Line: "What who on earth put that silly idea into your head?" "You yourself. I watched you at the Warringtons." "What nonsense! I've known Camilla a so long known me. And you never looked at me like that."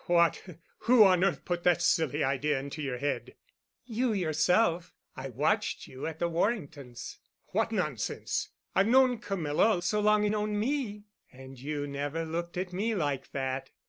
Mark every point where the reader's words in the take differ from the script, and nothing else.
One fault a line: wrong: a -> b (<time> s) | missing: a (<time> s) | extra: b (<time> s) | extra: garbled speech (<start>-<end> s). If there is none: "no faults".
no faults